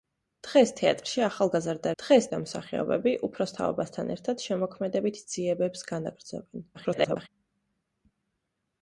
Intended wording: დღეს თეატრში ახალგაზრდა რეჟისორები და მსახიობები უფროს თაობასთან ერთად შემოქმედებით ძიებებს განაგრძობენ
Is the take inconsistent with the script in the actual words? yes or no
yes